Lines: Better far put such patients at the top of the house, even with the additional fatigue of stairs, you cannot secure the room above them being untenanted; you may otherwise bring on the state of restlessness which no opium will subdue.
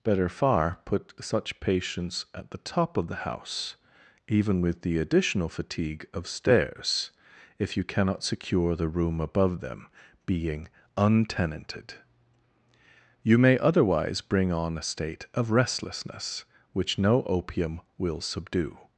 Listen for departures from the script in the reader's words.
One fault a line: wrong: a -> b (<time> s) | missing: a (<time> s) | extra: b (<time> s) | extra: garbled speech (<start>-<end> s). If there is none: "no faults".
extra: if (7.6 s)
wrong: the -> a (14.8 s)